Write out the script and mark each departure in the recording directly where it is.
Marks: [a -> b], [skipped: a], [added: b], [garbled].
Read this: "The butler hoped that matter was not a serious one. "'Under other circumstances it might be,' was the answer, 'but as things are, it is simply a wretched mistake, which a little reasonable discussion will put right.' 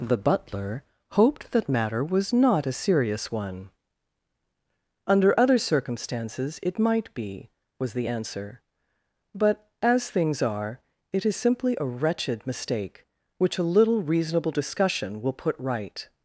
"The butler hoped that matter was not a serious one. "'Under other circumstances it might be,' was the answer, 'but as things are, it is simply a wretched mistake, which a little reasonable discussion will put right.'